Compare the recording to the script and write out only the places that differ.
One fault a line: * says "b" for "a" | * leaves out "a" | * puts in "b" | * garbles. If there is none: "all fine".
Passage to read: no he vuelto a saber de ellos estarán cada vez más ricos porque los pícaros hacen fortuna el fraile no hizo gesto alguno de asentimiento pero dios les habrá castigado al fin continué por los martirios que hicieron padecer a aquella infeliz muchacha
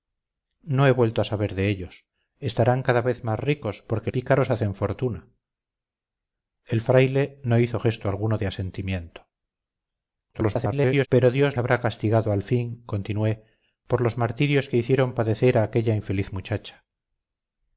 * leaves out "los"
* garbles
* leaves out "les"